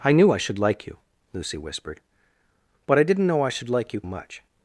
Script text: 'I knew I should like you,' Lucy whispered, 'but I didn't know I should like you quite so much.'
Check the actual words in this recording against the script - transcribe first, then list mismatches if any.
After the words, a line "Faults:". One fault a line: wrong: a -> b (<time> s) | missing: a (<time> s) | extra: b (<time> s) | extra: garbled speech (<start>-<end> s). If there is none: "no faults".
'I knew I should like you,' Lucy whispered, 'but I didn't know I should like you much.'
Faults:
missing: quite so (4.0 s)